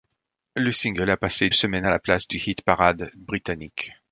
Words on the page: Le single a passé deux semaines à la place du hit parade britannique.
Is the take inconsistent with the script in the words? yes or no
yes